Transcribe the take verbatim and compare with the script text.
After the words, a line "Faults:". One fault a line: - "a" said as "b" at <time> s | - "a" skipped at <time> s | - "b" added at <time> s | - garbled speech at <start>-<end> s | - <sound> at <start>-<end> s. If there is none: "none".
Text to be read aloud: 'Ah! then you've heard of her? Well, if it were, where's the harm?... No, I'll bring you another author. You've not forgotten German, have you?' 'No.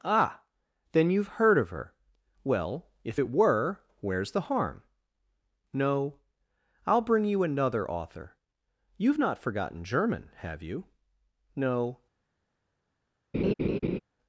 'Ah! then you've heard of her? Well, if it were, where's the harm?... No, I'll bring you another author. You've not forgotten German, have you?' 'No.
Faults:
- laugh at 13.3-14.0 s